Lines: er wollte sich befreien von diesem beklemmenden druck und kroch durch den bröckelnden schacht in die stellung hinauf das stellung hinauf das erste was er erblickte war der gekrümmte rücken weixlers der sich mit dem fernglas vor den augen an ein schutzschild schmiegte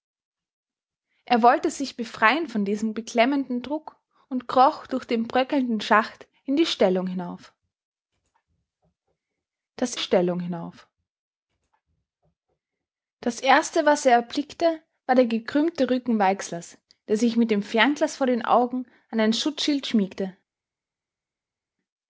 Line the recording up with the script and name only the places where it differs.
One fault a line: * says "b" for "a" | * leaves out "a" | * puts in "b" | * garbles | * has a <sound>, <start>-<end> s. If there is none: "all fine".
all fine